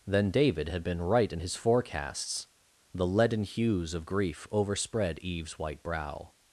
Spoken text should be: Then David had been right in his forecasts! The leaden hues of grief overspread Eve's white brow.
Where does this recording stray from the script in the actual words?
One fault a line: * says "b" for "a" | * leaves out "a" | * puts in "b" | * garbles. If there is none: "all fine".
all fine